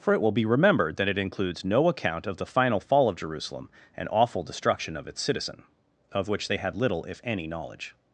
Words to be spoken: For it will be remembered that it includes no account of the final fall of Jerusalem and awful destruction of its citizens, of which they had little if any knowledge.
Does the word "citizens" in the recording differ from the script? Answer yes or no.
yes